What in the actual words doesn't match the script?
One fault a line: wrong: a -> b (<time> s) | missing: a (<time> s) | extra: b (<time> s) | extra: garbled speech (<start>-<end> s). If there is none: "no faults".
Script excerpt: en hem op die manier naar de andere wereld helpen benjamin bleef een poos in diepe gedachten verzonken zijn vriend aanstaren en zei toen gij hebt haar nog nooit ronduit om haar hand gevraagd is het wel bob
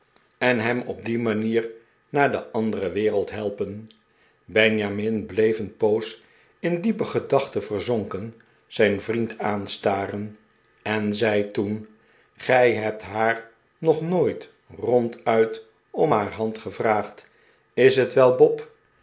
no faults